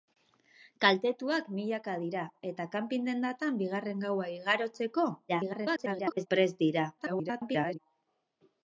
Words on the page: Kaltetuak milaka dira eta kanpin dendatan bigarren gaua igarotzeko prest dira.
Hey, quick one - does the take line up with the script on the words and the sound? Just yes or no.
no